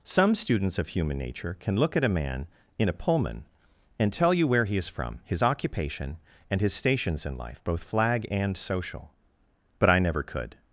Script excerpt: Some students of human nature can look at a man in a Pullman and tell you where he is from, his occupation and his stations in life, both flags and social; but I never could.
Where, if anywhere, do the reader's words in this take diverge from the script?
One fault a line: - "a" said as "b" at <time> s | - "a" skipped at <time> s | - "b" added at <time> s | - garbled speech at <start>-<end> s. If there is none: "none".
- "flags" said as "flag" at 7.8 s